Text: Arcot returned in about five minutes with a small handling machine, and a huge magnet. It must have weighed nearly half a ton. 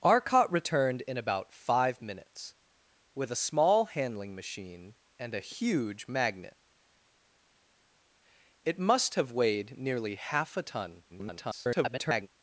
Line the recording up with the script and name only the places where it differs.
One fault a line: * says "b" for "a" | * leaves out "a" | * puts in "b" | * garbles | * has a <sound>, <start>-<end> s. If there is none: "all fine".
* garbles